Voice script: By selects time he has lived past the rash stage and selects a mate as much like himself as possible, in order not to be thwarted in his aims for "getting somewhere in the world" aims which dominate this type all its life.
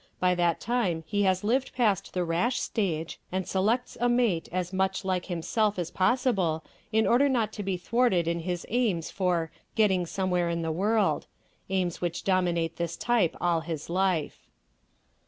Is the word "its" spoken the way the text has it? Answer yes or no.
no